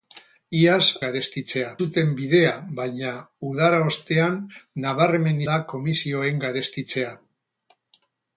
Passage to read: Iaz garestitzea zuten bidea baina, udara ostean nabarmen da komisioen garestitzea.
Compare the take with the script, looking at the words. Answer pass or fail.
pass